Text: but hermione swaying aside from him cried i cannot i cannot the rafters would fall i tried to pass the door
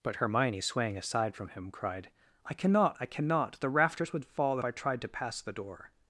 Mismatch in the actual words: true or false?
false